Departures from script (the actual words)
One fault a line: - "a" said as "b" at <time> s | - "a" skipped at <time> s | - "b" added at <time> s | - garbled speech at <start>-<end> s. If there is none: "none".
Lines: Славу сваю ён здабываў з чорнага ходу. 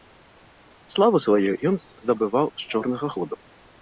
none